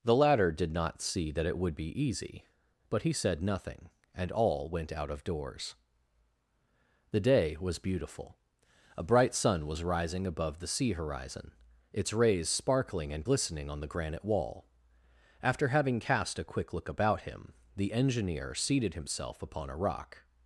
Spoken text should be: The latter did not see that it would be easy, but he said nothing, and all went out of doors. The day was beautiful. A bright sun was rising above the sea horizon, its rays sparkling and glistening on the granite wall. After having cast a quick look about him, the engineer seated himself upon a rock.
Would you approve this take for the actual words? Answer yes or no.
yes